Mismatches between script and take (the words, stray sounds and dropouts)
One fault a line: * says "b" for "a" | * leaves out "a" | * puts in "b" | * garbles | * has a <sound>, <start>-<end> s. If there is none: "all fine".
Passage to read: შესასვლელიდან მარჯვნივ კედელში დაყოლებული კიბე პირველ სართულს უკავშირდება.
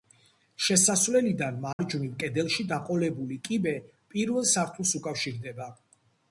* has a dropout, 1.7-1.8 s